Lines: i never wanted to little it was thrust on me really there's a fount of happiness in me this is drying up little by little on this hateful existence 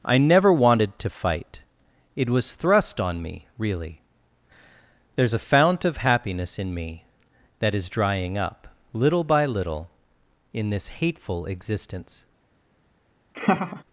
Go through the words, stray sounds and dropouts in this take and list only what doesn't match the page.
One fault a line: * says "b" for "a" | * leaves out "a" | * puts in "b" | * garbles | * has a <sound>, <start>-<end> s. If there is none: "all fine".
* says "fight" for "little"
* says "that" for "this"
* says "in" for "on"
* has a laugh, 13.3-13.8 s